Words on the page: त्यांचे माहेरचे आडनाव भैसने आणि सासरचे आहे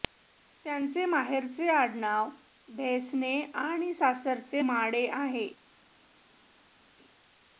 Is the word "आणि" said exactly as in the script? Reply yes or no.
yes